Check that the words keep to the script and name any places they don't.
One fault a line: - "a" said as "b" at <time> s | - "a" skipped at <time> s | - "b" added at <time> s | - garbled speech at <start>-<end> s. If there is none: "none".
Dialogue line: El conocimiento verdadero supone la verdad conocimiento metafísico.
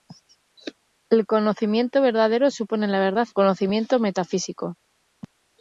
none